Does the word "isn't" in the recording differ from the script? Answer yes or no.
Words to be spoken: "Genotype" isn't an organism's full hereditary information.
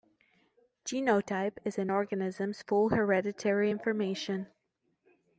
yes